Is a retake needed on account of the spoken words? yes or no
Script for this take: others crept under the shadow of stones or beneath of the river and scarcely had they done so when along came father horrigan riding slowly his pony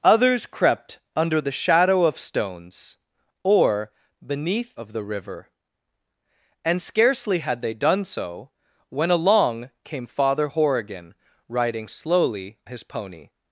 no